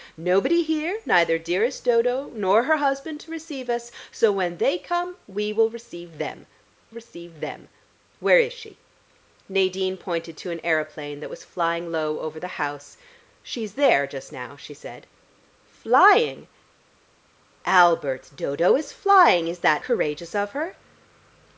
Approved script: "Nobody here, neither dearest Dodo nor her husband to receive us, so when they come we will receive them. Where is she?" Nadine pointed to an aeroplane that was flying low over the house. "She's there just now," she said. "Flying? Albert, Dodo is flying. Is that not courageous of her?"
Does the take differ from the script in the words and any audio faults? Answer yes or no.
yes